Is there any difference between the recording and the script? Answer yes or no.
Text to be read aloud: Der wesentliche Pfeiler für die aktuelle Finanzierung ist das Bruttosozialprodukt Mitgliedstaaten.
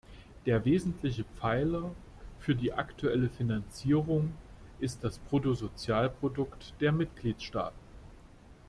yes